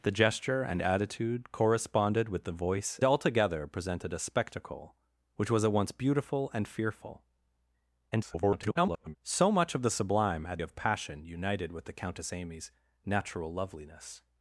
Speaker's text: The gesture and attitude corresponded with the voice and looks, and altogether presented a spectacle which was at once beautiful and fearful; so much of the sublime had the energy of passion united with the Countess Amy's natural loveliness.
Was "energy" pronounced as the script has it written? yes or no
no